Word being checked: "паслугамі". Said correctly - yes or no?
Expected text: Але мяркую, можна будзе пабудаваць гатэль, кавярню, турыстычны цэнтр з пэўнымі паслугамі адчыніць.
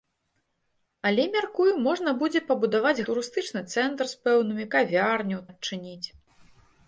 no